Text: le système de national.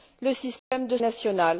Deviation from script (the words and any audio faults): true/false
true